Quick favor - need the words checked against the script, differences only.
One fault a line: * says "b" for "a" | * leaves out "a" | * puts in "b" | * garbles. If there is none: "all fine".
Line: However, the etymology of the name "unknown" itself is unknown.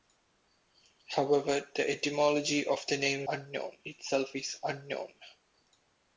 all fine